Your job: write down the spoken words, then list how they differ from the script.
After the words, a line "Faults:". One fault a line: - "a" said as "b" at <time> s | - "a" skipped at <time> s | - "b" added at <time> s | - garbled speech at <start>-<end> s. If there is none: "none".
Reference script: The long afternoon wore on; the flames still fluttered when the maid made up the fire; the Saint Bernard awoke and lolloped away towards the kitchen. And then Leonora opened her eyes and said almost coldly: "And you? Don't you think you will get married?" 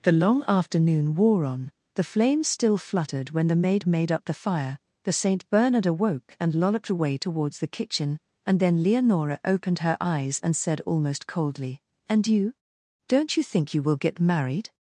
The long afternoon wore on; the flames still fluttered when the maid made up the fire; the Saint Bernard awoke and lolloped away towards the kitchen. And then Leonora opened her eyes and said almost coldly: "And you? Don't you think you will get married?"
Faults:
none